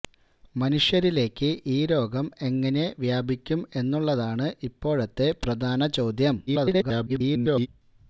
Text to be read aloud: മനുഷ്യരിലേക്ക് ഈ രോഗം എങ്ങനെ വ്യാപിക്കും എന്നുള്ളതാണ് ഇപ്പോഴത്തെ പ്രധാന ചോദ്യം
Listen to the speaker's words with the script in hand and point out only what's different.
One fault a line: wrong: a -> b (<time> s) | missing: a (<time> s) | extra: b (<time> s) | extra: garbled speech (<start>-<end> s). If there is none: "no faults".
extra: garbled speech (6.5-7.7 s)